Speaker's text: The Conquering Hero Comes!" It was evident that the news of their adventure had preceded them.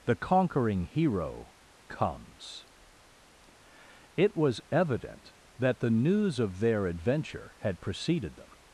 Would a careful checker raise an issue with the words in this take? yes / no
no